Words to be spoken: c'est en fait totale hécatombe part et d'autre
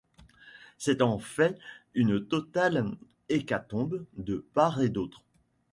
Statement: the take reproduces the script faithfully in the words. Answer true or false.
false